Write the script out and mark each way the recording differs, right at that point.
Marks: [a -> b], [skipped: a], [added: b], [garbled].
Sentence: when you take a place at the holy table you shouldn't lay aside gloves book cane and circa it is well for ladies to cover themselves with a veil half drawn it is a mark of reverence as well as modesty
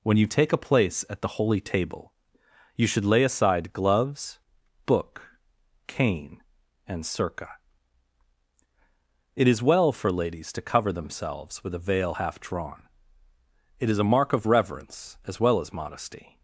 when you take a place at the holy table you [shouldn't -> should] lay aside gloves book cane and circa it is well for ladies to cover themselves with a veil half drawn it is a mark of reverence as well as modesty